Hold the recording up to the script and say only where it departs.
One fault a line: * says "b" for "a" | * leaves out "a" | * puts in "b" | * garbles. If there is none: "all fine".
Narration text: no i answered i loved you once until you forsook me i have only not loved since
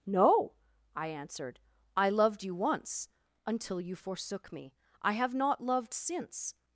* leaves out "only"